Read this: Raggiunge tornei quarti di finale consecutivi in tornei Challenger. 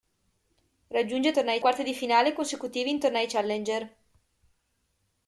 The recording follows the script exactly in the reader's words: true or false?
true